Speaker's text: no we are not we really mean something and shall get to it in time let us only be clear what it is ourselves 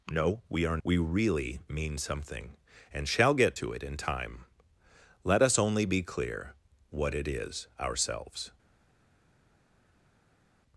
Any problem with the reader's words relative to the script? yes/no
yes